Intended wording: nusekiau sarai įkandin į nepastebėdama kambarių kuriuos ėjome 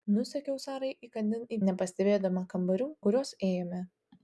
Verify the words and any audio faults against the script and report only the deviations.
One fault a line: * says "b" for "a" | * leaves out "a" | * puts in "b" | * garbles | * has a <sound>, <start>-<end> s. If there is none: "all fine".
all fine